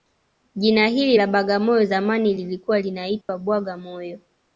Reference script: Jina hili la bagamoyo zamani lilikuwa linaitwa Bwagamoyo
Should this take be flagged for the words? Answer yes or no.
no